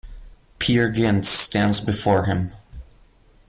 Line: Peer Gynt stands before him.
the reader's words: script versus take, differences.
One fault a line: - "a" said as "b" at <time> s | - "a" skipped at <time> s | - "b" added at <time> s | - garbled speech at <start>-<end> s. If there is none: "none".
none